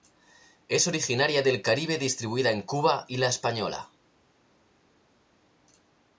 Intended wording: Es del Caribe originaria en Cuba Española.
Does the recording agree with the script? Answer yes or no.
no